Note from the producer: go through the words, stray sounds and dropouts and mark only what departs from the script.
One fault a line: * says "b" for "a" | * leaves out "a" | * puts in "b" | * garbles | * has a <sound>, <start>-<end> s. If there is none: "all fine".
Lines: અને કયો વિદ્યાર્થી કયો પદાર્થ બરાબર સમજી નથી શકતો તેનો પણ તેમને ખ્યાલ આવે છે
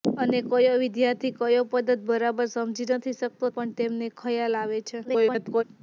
* leaves out "તેનો"
* garbles